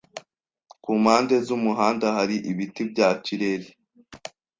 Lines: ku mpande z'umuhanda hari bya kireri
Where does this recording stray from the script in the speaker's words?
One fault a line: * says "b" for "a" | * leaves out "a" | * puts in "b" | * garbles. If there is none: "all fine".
* puts in "ibiti"